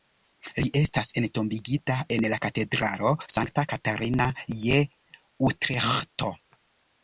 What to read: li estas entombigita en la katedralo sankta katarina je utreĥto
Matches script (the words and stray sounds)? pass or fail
pass